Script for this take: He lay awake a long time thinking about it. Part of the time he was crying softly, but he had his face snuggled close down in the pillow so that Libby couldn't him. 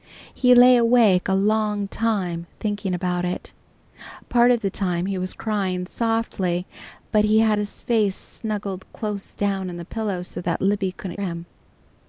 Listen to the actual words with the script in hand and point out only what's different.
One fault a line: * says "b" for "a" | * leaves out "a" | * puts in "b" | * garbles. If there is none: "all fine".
all fine